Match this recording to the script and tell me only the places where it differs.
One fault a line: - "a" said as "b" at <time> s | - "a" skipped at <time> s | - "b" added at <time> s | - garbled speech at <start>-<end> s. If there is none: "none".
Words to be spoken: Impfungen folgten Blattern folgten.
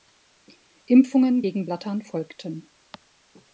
- "folgten" said as "gegen" at 1.4 s